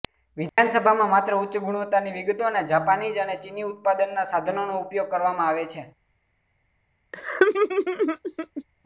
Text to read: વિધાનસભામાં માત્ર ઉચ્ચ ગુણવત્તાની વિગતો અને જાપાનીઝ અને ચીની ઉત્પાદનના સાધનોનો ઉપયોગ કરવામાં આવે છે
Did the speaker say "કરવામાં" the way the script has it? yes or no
yes